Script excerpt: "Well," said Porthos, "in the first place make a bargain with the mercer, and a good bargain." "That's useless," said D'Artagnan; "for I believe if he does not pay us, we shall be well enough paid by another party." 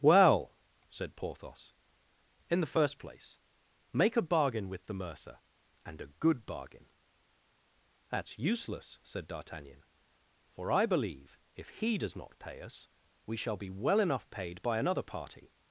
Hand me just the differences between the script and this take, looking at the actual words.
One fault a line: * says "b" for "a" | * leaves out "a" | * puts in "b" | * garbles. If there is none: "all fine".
all fine